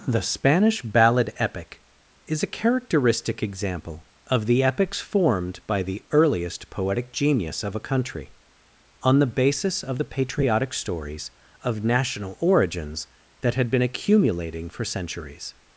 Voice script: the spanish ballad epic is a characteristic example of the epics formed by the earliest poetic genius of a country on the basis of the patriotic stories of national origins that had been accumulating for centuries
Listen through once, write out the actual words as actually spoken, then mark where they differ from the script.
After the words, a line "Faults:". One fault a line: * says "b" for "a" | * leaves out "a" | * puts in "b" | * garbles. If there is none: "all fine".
the spanish ballad epic is a characteristic example of the epics formed by the earliest poetic genius of a country on the basis of the patriotic stories of national origins that had been accumulating for centuries
Faults:
all fine